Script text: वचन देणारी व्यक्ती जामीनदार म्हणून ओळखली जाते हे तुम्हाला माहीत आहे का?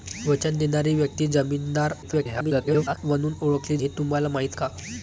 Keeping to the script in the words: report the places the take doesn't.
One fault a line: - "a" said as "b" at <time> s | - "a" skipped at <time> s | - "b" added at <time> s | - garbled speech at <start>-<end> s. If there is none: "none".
- garbled speech at 2.0-3.0 s
- "जाते" skipped at 3.8 s
- "आहे" skipped at 4.6 s